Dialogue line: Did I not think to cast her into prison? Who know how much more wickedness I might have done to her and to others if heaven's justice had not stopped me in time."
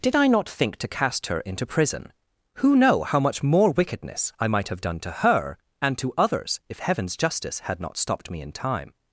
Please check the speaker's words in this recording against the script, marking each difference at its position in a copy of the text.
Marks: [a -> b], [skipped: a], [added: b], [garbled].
Did I not think to cast her into prison? Who know how much more wickedness I might have done to her and to others if heaven's justice had not stopped me in time."